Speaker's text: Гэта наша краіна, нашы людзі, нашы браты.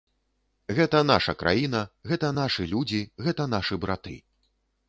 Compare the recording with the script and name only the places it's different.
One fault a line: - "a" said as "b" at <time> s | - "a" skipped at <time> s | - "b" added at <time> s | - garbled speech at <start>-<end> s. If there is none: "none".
- "гэта" added at 2.1 s
- "гэта" added at 3.3 s